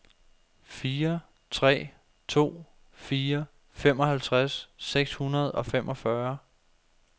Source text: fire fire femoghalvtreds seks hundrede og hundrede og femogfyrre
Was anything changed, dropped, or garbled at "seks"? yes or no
no